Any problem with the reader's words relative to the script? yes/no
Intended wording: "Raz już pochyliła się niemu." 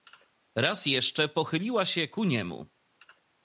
yes